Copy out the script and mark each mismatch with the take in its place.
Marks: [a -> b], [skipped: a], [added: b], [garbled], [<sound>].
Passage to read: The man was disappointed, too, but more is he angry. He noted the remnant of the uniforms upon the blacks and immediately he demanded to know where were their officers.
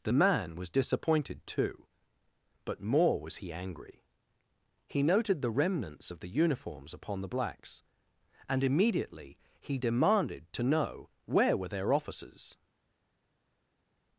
The man was disappointed, too, but more [is -> was] he angry. He noted the [remnant -> remnants] of the uniforms upon the blacks and immediately he demanded to know where were their officers.